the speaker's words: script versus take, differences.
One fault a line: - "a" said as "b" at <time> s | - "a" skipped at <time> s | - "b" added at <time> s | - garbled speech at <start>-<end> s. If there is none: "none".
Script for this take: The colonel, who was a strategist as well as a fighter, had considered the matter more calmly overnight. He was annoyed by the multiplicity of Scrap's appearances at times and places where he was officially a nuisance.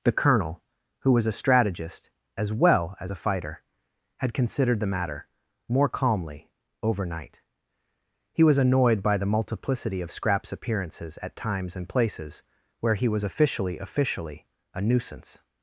- "officially" added at 13.8 s